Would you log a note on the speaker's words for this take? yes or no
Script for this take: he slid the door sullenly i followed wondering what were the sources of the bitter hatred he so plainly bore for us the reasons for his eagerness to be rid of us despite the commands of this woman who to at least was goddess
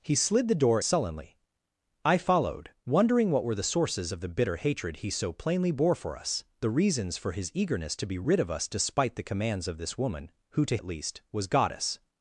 no